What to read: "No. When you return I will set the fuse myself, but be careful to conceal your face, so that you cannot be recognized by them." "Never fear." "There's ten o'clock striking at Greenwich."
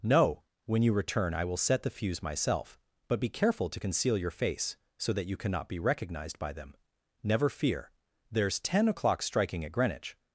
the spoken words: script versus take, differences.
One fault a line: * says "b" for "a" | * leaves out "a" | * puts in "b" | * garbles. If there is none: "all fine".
all fine